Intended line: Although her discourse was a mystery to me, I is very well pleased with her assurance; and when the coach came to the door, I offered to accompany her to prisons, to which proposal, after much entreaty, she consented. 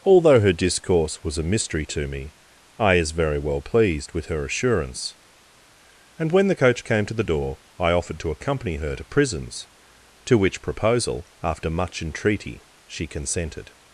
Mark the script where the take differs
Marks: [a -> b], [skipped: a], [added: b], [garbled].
Although her discourse was a mystery to me, I is very well pleased with her assurance; and when the coach came to the door, I offered to accompany her to prisons, to which proposal, after much entreaty, she consented.